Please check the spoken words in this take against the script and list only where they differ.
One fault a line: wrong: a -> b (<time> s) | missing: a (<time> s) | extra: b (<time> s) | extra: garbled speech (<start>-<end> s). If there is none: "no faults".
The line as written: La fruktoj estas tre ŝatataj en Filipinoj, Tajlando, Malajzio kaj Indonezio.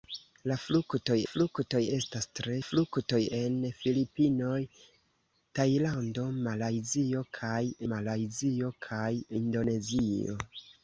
extra: fruktoj (1.3 s)
wrong: ŝatataj -> fruktoj (2.6 s)
extra: Malajzio kaj (7.9 s)